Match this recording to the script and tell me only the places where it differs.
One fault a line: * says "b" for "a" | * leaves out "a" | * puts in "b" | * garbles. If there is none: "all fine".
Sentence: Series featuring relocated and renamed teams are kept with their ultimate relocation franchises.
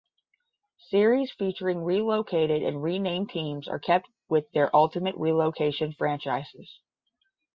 all fine